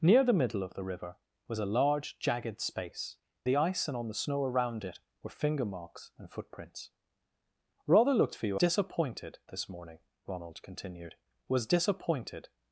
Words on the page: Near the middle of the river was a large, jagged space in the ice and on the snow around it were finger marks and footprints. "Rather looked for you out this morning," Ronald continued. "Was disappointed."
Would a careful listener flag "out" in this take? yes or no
yes